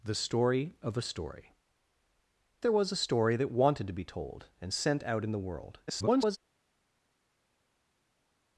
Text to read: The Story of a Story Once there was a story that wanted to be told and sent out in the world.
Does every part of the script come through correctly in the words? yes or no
no